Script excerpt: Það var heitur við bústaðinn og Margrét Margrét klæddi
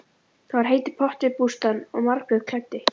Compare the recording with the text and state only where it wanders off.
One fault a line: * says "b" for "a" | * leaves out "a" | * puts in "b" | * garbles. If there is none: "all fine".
* puts in "pottur"
* leaves out "Margrét"